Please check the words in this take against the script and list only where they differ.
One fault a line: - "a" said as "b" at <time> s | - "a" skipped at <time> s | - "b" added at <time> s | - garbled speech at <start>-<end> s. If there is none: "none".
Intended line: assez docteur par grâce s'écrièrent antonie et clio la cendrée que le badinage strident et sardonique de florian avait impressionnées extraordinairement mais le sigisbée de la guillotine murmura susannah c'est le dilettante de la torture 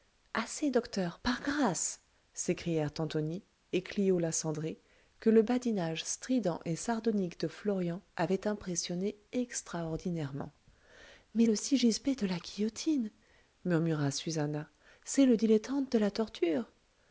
none